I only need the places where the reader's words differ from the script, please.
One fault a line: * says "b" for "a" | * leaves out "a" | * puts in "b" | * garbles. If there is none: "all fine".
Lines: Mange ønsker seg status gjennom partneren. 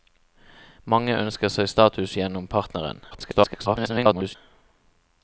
* garbles